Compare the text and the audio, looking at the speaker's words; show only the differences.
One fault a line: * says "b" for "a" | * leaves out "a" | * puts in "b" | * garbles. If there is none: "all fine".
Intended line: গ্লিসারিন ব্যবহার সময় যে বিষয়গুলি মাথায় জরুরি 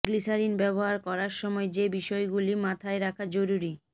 * puts in "করার"
* puts in "রাখা"